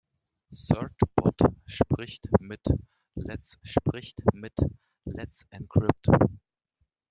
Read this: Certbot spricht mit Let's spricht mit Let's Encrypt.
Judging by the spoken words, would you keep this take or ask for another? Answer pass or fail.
pass